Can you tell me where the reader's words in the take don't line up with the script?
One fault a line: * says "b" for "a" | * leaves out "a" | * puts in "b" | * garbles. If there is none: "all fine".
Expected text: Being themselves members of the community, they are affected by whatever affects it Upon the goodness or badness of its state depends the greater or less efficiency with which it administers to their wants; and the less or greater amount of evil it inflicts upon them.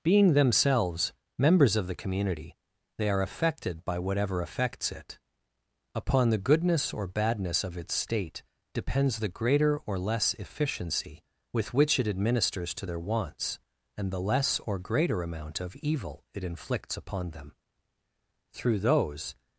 * puts in "Through those"